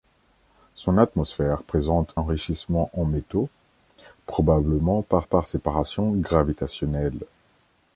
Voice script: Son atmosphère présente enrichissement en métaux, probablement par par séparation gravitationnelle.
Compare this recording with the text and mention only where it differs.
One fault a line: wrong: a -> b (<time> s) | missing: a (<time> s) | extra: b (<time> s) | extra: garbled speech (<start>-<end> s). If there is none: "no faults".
no faults